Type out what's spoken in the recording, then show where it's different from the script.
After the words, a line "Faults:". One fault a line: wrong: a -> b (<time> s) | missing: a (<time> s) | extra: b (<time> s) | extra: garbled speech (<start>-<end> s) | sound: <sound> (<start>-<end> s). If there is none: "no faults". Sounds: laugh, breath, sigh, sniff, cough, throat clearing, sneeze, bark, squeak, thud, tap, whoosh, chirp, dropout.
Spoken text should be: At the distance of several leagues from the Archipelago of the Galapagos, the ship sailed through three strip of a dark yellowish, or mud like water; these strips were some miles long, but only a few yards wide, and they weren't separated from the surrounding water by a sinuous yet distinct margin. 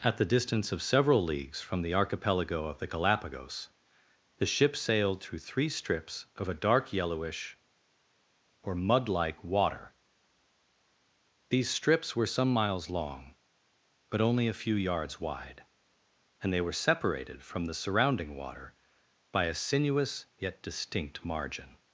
At the distance of several leagues from the Archipelago of the Galapagos, the ship sailed through three strips of a dark yellowish, or mud like water; these strips were some miles long, but only a few yards wide, and they were separated from the surrounding water by a sinuous yet distinct margin.
Faults:
wrong: strip -> strips (5.7 s)
wrong: weren't -> were (16.6 s)